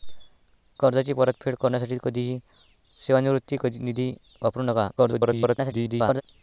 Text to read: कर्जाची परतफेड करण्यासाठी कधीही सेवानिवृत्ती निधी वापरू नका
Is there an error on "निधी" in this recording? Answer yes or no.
no